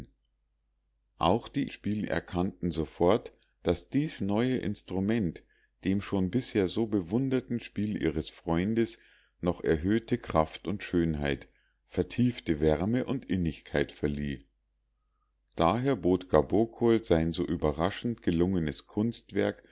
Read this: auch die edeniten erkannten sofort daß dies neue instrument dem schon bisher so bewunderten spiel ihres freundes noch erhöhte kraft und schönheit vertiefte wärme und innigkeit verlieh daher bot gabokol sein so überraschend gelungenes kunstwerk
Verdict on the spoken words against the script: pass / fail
fail